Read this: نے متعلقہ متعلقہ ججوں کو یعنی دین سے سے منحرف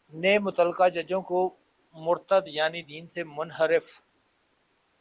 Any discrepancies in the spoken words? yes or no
yes